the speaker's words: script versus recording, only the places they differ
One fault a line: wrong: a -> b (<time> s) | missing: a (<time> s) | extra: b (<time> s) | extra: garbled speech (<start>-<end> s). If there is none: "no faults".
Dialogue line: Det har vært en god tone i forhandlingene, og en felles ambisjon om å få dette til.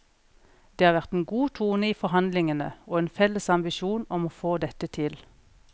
no faults